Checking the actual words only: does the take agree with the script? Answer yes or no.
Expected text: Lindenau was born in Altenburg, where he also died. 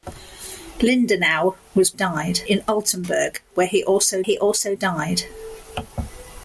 no